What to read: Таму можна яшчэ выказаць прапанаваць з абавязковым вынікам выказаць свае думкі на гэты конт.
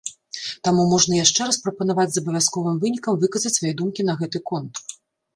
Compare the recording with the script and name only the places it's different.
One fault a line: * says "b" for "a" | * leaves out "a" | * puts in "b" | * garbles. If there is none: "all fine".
* says "раз" for "выказаць"